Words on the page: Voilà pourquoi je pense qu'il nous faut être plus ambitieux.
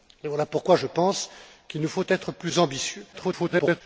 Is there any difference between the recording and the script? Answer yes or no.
yes